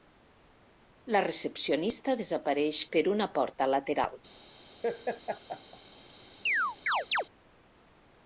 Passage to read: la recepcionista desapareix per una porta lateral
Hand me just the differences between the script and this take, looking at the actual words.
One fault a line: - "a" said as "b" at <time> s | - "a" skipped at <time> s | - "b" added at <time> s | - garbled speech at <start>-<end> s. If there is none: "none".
none